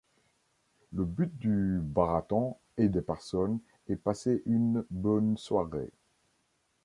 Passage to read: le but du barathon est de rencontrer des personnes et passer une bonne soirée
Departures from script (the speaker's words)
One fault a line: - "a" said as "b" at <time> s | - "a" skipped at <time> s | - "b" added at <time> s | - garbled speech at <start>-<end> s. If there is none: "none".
- "rencontrer" skipped at 3.0 s